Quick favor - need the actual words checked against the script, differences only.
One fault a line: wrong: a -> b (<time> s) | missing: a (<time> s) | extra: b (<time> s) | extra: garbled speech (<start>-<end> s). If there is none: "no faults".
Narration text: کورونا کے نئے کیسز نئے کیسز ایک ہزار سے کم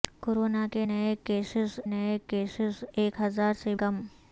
no faults